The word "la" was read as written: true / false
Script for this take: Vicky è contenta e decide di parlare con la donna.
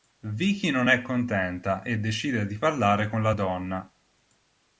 true